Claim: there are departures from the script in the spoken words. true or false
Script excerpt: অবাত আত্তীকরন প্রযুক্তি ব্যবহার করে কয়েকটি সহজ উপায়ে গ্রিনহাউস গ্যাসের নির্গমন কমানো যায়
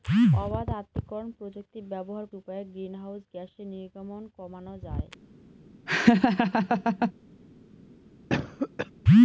true